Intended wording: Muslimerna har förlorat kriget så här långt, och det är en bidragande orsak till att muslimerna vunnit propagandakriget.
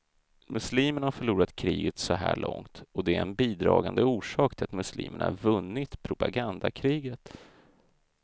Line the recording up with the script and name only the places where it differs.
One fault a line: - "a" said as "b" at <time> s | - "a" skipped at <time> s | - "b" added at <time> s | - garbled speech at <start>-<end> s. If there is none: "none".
none